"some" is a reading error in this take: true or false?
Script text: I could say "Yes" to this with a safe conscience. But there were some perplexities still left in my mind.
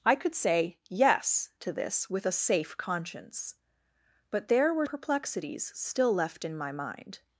true